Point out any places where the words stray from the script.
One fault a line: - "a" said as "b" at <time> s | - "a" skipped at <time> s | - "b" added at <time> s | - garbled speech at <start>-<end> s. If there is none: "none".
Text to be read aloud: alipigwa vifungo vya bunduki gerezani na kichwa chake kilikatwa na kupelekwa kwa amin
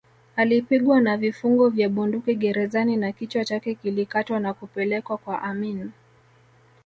- "na" added at 1.0 s